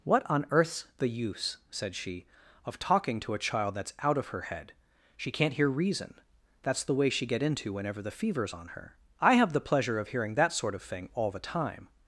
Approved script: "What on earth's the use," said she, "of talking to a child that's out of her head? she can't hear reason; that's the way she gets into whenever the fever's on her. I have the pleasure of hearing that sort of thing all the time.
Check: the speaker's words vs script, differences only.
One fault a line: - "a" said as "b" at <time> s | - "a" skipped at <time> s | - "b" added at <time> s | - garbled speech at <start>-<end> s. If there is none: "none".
- "gets" said as "get" at 7.3 s